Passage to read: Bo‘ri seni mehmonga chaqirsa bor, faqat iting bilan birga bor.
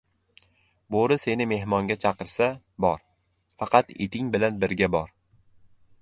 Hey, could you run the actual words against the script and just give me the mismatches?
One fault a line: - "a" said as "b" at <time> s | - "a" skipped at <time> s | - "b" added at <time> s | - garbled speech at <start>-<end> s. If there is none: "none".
none